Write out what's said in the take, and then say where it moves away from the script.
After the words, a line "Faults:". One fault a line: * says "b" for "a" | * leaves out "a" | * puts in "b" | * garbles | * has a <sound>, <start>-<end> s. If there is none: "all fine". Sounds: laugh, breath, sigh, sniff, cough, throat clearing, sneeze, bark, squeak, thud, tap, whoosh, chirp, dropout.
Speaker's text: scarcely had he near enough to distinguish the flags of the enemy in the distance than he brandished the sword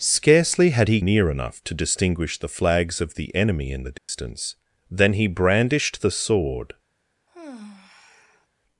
scarcely had he near enough to distinguish the flags of the enemy in the distance than he brandished the sword
Faults:
* has a dropout, 4.0-4.1 s
* has a sigh, 7.3-8.5 s